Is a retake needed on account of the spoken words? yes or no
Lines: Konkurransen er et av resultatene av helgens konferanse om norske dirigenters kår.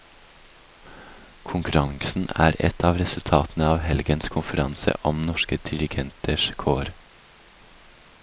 no